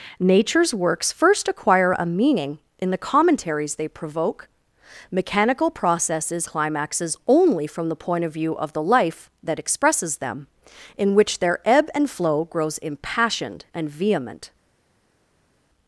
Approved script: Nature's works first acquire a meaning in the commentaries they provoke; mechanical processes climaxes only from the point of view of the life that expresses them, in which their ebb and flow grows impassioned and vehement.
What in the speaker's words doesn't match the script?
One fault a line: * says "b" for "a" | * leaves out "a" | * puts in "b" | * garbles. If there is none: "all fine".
all fine